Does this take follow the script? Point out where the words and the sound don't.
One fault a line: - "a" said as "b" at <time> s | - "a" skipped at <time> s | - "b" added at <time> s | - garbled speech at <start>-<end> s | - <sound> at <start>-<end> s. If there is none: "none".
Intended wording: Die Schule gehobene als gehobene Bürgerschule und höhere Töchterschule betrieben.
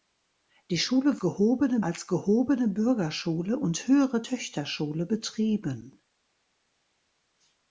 none